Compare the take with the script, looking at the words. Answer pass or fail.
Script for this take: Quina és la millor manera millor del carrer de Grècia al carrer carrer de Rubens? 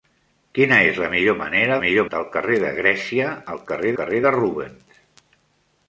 pass